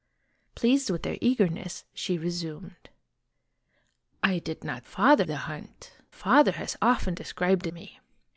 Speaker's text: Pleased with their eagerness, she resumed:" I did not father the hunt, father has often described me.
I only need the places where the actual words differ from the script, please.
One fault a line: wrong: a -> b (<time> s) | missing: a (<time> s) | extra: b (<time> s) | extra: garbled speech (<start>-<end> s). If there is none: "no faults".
no faults